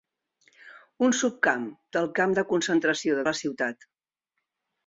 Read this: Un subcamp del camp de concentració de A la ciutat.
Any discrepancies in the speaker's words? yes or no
no